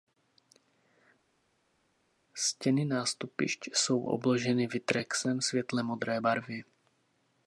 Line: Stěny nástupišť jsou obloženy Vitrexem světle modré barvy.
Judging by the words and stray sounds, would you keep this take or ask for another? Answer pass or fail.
pass